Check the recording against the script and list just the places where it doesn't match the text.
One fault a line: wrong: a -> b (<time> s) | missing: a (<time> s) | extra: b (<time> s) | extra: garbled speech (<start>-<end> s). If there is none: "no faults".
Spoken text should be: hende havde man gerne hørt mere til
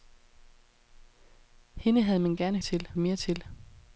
wrong: hørt -> til (2.6 s)